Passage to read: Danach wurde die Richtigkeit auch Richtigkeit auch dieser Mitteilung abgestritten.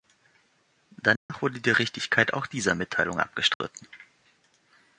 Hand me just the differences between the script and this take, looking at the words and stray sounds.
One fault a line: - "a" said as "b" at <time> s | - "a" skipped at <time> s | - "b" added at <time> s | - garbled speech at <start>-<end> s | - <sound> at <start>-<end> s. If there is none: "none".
- dropout at 1.2-1.3 s
- "Richtigkeit auch" skipped at 2.5 s
- dropout at 3.5-3.6 s